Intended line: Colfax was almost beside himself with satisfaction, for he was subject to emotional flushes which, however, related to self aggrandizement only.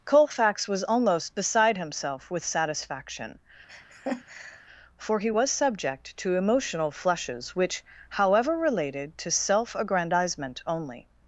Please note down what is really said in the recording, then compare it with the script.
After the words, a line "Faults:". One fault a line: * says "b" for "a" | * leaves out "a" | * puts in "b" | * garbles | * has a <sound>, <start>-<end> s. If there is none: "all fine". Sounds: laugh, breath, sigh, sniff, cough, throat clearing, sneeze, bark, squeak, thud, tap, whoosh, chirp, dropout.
Colfax was almost beside himself with satisfaction, for he was subject to emotional flushes which, however, related to self aggrandizement only.
Faults:
* has a laugh, 3.7-4.7 s